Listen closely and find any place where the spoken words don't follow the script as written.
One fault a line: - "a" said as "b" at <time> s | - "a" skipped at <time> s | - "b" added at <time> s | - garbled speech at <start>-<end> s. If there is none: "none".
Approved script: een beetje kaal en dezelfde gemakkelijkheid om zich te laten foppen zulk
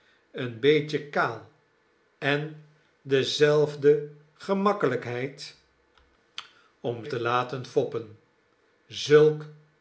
- "zich" skipped at 7.0 s